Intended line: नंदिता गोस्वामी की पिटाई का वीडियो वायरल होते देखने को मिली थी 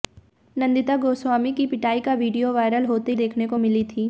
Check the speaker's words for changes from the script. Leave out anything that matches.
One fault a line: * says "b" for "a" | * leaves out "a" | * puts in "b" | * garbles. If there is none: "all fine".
all fine